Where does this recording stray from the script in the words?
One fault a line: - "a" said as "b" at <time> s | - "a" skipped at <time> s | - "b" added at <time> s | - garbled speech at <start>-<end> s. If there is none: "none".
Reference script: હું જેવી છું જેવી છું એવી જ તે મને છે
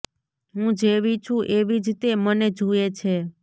- "જેવી છું" skipped at 1.5 s
- "જુએ" added at 2.6 s